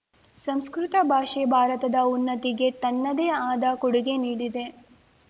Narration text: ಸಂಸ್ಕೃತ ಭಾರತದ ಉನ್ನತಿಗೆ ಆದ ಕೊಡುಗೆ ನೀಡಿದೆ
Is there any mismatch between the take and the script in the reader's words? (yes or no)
yes